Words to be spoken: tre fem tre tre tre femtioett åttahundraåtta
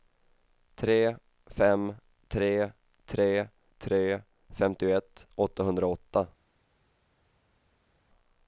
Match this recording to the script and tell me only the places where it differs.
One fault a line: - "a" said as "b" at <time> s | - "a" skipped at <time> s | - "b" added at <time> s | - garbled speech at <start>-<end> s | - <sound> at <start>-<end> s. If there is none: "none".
none